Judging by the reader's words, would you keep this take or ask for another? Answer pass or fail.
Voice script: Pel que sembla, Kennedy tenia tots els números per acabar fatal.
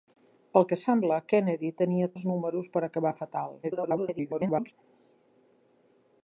fail